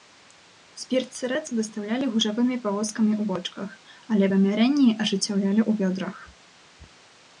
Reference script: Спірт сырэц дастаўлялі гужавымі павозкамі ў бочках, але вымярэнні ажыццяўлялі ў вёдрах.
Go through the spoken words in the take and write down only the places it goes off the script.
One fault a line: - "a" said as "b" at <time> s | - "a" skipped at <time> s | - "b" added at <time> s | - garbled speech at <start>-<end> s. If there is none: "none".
none